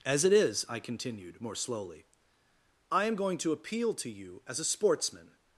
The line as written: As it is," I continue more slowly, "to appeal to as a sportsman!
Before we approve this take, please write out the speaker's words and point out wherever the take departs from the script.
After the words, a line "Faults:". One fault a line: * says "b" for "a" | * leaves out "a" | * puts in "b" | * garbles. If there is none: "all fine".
As it is," I continued more slowly, "I am going to appeal to you as a sportsman!
Faults:
* says "continued" for "continue"
* puts in "I am going"
* puts in "you"